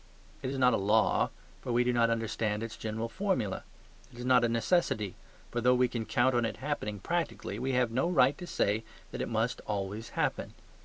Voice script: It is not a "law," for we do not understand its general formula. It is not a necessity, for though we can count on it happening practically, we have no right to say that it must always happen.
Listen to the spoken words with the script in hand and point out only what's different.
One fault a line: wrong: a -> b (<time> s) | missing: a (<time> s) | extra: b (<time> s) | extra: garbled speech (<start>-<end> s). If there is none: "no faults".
no faults